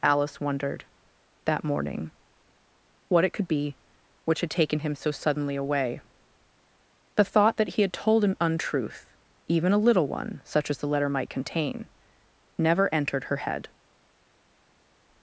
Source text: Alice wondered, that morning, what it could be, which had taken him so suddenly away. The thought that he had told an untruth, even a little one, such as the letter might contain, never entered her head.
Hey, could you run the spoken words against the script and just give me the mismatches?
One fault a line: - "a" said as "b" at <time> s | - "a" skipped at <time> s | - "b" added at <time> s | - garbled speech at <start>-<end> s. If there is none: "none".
none